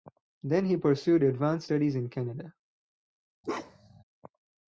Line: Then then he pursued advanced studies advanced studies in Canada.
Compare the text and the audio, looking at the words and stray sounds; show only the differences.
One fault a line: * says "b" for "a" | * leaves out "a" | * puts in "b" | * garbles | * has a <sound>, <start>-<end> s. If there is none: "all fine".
* leaves out "then"
* leaves out "advanced studies"
* has a bark, 3.4-4.0 s